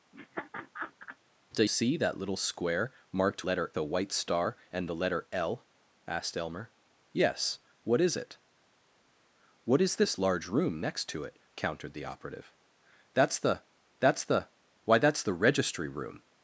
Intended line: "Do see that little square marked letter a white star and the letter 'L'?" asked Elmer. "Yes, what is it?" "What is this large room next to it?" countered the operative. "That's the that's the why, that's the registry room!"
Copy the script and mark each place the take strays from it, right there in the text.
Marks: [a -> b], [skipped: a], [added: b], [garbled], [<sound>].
[laugh] "Do see that little square marked letter a white star and the letter 'L'?" asked Elmer. "Yes, what is it?" "What is this large room next to it?" countered the operative. "That's the that's the why, that's the registry room!"